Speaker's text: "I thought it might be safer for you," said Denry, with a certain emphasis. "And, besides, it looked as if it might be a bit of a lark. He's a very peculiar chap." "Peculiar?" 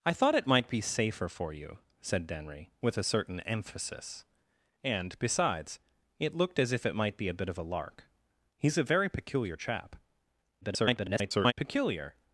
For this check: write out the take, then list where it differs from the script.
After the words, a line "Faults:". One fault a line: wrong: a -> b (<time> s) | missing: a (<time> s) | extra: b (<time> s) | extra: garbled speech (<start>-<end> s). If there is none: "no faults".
"I thought it might be safer for you," said Denry, with a certain emphasis. "And, besides, it looked as if it might be a bit of a lark. He's a very peculiar chap." [garbled] "Peculiar?"
Faults:
extra: garbled speech (10.6-11.5 s)